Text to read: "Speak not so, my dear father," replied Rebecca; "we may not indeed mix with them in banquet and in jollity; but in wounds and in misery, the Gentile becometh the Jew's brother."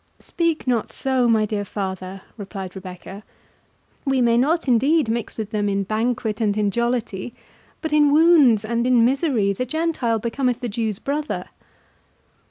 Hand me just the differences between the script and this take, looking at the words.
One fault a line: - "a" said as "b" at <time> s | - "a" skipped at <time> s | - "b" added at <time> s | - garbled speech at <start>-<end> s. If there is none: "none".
none